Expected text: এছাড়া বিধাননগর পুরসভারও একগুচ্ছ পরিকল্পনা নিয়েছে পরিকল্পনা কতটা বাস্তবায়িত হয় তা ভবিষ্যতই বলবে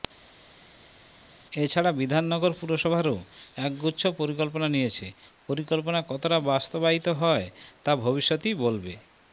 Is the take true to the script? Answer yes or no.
yes